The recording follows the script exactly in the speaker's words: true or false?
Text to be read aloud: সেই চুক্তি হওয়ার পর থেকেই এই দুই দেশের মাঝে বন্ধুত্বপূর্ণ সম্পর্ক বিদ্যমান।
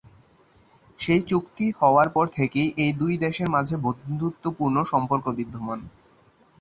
true